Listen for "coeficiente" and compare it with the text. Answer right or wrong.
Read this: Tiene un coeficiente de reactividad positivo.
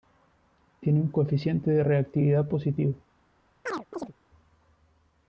right